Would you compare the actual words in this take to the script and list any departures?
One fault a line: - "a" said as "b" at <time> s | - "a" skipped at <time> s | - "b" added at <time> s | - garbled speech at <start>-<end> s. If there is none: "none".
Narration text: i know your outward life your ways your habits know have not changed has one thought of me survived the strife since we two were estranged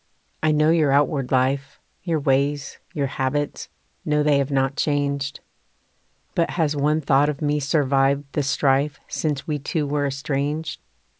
- "they" added at 4.2 s
- "but" added at 6.3 s